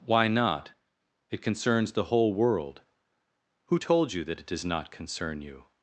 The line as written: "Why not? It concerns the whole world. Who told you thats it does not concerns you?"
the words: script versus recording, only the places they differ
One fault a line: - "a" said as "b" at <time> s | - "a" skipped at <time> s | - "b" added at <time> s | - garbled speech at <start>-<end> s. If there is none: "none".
- "thats" said as "that" at 4.2 s
- "concerns" said as "concern" at 4.9 s